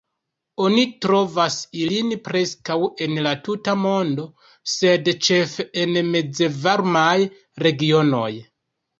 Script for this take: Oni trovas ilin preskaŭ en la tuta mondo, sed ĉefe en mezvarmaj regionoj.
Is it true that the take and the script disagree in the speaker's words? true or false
false